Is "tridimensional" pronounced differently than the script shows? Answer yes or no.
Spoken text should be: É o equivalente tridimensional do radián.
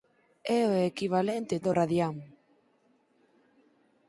yes